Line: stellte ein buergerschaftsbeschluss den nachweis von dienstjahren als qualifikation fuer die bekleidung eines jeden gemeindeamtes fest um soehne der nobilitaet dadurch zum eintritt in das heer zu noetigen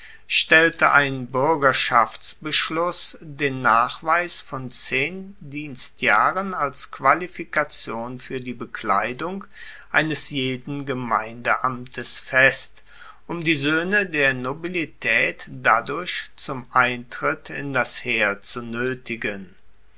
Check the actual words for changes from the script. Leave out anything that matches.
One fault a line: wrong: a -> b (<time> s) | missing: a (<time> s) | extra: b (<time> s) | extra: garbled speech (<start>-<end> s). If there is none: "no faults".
extra: zehn (4.7 s)
extra: die (13.4 s)